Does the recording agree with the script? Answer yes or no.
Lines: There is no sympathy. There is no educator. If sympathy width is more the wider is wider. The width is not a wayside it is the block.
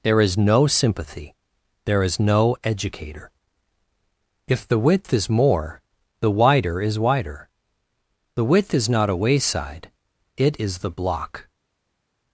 no